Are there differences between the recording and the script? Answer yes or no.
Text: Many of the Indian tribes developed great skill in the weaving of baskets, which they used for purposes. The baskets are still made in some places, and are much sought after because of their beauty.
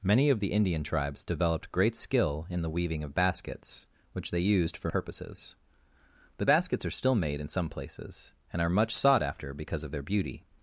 no